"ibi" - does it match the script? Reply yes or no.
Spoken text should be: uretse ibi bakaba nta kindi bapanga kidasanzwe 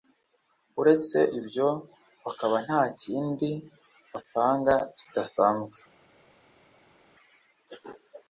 no